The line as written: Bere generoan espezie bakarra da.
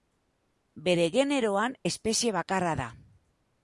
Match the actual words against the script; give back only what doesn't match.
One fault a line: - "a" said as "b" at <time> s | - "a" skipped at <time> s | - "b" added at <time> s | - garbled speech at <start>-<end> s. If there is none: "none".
none